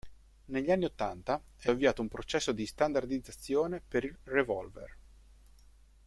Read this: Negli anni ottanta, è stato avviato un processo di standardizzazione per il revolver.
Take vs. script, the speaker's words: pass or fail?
fail